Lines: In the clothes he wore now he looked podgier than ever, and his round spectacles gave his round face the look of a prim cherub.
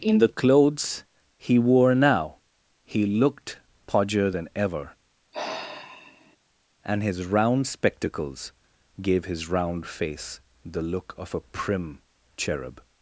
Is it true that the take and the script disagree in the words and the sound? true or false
true